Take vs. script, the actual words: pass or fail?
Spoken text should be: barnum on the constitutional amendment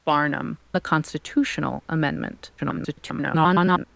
fail